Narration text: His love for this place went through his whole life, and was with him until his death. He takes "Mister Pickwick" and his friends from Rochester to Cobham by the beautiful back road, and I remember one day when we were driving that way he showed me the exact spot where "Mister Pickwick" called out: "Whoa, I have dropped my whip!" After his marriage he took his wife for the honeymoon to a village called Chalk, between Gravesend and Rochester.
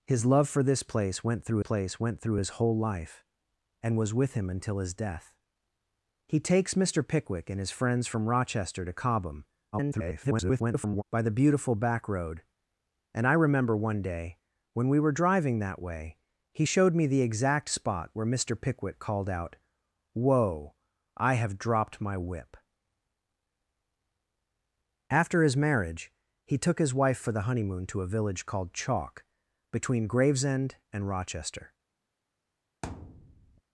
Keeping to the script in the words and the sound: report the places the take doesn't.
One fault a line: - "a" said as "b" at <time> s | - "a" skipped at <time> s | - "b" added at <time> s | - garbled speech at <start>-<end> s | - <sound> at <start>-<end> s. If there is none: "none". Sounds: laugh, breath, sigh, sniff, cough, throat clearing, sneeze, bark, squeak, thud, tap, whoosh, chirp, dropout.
- "place went through" added at 1.6 s
- garbled speech at 9.7-11.0 s
- thud at 32.8-33.6 s